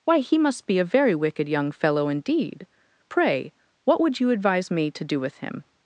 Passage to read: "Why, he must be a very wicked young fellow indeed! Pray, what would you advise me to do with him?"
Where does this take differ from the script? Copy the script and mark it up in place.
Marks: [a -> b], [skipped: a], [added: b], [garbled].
"Why, he must be a very wicked young fellow indeed! Pray, what would you advise me to do with him?"